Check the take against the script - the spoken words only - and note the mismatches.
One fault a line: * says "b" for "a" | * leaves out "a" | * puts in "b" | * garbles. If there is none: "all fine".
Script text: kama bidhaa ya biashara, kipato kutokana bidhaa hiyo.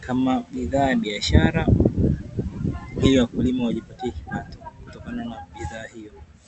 * puts in "ili wakulima wajipatie"
* puts in "na"